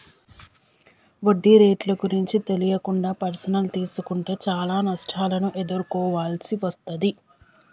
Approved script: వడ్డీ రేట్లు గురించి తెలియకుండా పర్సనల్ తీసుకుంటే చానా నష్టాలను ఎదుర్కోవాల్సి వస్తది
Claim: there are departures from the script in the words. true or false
false